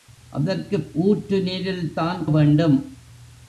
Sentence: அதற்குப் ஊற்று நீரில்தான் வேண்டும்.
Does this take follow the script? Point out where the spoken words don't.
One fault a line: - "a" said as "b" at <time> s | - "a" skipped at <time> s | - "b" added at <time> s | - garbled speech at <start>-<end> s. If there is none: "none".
none